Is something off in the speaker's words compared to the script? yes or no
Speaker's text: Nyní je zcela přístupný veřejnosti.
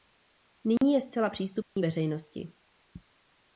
no